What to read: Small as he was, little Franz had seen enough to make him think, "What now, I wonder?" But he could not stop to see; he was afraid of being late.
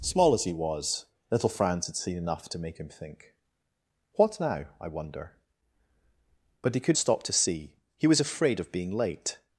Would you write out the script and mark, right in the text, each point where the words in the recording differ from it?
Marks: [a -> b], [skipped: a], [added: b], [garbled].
Small as he was, little Franz had seen enough to make him think, "What now, I wonder?" But he could [skipped: not] stop to see; he was afraid of being late.